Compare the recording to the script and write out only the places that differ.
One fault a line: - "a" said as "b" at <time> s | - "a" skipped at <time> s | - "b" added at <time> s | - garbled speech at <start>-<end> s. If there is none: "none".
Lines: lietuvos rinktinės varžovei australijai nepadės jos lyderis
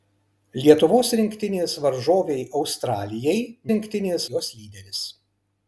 - "nepadės" said as "rinktinės" at 3.7 s